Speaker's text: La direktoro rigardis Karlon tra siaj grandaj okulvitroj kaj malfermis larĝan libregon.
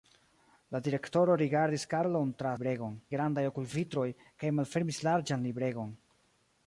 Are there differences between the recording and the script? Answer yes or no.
yes